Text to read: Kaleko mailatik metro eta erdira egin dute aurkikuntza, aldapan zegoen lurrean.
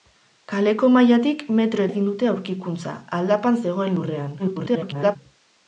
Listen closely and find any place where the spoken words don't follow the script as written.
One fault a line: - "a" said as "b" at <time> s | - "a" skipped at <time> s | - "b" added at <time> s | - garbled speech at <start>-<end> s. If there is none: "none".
- "eta erdira" skipped at 1.8 s
- garbled speech at 4.4-5.2 s